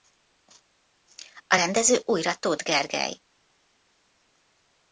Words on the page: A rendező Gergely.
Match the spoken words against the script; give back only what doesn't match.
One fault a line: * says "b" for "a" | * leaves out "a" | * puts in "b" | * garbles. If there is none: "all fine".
* puts in "újra Tóth"